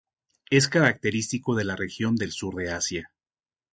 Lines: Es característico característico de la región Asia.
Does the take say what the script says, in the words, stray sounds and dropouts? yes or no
no